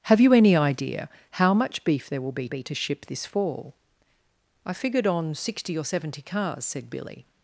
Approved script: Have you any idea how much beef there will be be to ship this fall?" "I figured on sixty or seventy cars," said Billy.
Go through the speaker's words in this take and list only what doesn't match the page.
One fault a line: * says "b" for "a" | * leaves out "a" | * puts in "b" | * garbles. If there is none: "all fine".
all fine